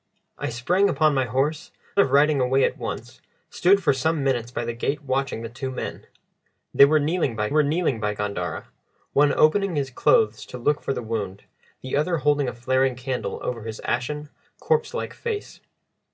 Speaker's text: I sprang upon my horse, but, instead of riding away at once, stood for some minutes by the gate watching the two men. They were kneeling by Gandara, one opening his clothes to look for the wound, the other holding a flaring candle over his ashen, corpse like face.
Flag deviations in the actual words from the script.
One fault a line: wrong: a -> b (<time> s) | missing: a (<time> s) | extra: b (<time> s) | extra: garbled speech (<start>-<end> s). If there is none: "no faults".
missing: but instead (1.7 s)
extra: were kneeling by (7.5 s)